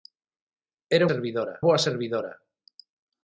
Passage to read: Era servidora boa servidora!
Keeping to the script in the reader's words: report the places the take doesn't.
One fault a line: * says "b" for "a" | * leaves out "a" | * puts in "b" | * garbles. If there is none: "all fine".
all fine